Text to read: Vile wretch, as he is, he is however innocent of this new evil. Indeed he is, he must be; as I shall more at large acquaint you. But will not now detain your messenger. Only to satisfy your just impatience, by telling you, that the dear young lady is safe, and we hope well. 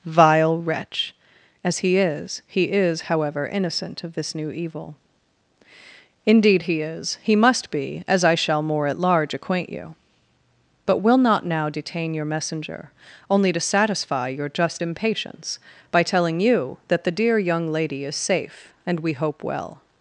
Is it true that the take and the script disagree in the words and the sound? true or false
false